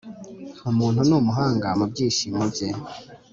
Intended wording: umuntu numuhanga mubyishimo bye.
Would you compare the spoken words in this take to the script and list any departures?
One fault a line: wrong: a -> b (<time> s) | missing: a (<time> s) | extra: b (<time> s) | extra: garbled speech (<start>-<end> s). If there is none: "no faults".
no faults